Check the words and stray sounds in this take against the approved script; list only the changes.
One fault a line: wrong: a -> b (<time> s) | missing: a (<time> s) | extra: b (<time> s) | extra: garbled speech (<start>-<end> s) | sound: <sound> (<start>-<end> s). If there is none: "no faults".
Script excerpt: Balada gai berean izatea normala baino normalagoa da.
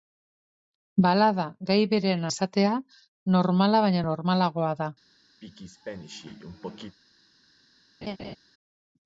sound: throat clearing (5.4-7.0 s)
sound: laugh (8.0-8.4 s)